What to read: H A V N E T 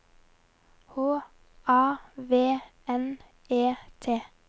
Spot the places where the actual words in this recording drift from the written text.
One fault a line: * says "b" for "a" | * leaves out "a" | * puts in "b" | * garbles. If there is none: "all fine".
all fine